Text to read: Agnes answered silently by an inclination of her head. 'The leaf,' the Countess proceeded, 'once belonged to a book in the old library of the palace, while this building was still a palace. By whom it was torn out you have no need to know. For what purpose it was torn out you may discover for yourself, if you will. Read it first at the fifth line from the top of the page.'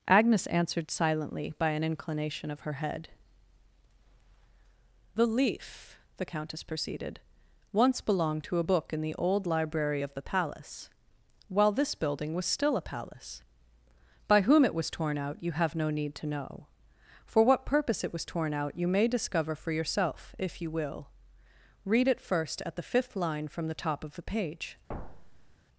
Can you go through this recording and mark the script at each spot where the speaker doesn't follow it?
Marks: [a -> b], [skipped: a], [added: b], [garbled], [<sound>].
Agnes answered silently by an inclination of her head. 'The leaf,' the Countess proceeded, 'once belonged to a book in the old library of the palace, while this building was still a palace. By whom it was torn out you have no need to know. For what purpose it was torn out you may discover for yourself, if you will. Read it first at the fifth line from the top of the page.' [thud]